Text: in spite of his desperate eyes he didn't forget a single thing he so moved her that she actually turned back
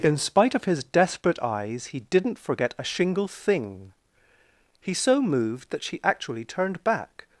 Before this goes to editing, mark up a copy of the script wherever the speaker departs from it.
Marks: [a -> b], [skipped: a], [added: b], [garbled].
in spite of his desperate eyes he didn't forget a [single -> shingle] thing he so moved [skipped: her] that she actually turned back